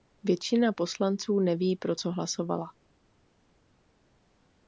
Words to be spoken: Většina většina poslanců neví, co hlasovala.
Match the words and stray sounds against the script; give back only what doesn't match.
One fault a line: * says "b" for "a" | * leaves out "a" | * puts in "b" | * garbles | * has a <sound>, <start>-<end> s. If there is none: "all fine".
* leaves out "většina"
* puts in "pro"